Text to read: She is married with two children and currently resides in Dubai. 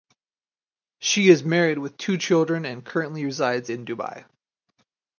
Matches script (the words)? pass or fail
pass